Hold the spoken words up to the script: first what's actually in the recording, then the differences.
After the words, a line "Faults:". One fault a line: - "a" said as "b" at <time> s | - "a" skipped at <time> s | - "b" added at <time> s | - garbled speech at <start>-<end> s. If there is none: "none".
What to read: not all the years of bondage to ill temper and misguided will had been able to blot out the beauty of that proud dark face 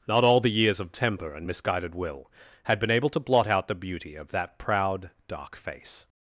not all the years of temper and misguided will had been able to blot out the beauty of that proud dark face
Faults:
- "bondage to ill" skipped at 0.9 s